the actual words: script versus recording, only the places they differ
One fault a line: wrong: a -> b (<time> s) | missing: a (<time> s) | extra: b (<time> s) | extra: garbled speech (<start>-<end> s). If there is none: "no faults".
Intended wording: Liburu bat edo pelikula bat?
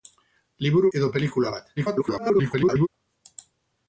missing: bat (0.9 s)
extra: garbled speech (1.8-2.9 s)